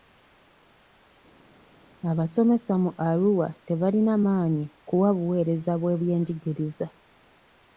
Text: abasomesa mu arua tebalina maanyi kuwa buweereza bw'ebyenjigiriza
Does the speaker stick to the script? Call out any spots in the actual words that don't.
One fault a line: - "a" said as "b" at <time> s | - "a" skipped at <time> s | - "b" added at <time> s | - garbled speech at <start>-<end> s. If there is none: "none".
none